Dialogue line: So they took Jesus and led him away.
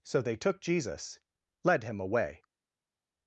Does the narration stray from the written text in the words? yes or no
yes